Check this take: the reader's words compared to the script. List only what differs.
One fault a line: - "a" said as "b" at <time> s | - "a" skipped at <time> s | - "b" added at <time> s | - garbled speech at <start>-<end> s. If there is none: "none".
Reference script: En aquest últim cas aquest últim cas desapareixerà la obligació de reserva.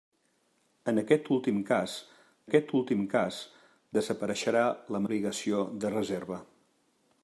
none